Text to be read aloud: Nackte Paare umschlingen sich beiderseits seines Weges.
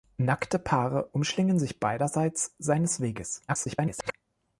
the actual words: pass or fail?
fail